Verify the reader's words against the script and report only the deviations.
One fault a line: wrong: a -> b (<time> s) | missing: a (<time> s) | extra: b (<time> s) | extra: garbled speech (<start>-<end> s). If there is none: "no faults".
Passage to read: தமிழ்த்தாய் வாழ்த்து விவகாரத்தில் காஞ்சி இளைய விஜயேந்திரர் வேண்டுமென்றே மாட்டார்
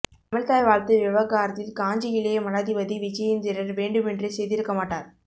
extra: மடாதிபதி (2.4 s)
extra: செய்திருக்க (4.3 s)